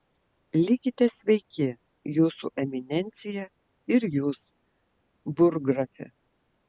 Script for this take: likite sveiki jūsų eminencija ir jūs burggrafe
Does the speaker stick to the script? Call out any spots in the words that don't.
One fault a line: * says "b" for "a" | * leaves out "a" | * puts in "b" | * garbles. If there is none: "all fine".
all fine